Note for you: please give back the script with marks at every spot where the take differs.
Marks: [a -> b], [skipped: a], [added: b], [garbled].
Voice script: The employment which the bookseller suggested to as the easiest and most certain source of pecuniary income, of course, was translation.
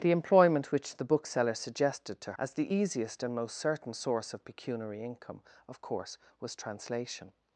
The employment which the bookseller suggested to as the easiest and most certain source of pecuniary income, of course, was translation.